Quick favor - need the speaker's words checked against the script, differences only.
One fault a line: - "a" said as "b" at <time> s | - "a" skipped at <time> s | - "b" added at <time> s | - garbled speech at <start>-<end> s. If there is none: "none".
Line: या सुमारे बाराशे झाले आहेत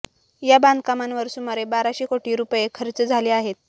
- "बांधकामांवर" added at 0.6 s
- "कोटी रुपये खर्च" added at 2.1 s